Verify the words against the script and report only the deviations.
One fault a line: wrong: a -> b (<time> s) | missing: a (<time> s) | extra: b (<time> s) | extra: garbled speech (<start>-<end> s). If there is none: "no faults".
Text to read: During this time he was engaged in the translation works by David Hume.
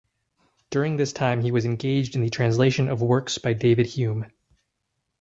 extra: of (2.9 s)